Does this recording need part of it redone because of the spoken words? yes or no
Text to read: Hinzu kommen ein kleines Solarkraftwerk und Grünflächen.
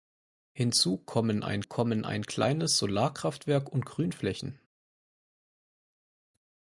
yes